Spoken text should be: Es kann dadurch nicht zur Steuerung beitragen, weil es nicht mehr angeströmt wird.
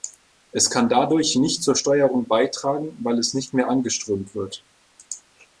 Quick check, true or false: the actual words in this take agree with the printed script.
true